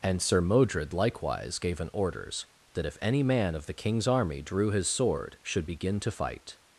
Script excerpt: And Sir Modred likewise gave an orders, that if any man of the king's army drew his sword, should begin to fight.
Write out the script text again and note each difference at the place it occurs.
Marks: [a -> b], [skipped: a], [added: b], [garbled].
And Sir Modred likewise gave an orders, that if any man of the king's army drew his sword, should begin to fight.